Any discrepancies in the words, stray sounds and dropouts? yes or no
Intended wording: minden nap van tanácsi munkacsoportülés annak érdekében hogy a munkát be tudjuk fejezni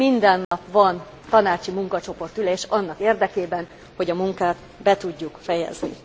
yes